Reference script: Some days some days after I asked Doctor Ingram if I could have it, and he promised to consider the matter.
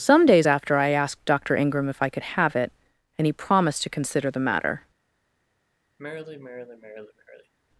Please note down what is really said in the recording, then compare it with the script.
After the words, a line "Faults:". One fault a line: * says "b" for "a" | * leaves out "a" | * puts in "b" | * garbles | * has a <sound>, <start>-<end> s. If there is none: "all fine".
Some days after I asked Doctor Ingram if I could have it, and he promised to consider the matter.
Faults:
* leaves out "some days"
* has a sigh, 6.0-7.5 s